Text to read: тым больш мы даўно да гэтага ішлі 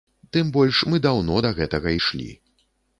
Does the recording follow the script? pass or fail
pass